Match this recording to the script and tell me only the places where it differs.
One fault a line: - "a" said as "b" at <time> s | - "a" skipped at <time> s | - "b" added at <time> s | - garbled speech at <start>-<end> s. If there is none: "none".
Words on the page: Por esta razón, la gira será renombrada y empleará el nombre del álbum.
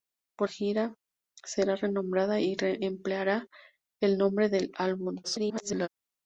- "esta razón la" skipped at 0.5 s
- garbled speech at 5.2-5.9 s